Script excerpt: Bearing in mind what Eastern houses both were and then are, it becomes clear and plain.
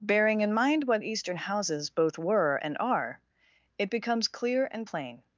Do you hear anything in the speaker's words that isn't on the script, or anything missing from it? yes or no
yes